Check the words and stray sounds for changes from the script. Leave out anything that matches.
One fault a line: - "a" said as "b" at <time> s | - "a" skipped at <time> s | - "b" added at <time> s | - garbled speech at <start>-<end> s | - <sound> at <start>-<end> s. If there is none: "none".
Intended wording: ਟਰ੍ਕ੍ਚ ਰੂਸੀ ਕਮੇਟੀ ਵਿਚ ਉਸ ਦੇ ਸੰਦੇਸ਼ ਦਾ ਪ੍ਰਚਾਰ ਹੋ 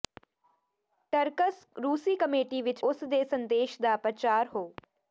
none